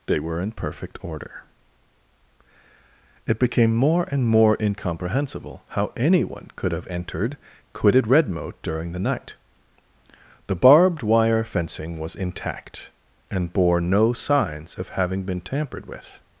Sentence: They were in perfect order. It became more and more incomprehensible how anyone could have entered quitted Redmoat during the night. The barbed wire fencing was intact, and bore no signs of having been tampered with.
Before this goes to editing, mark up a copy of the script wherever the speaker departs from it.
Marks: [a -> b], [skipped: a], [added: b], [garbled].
They were in perfect order. It became more and more incomprehensible how anyone could have entered quitted Redmoat during the night. The barbed wire fencing was intact, and bore no signs of having been tampered with.